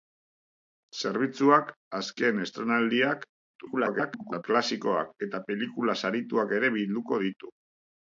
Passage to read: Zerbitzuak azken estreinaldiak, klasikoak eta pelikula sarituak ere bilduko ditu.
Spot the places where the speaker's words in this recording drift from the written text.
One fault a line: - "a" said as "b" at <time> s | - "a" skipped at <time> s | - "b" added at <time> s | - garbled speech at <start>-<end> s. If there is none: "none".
- garbled speech at 3.5-4.4 s